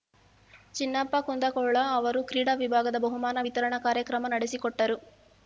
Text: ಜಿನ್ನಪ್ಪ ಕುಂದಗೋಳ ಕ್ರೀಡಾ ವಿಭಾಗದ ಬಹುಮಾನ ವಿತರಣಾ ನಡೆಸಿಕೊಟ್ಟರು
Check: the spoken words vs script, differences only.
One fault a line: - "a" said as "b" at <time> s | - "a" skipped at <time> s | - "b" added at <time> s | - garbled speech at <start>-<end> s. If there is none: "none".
- "ಅವರು" added at 1.9 s
- "ಕಾರ್ಯಕ್ರಮ" added at 3.8 s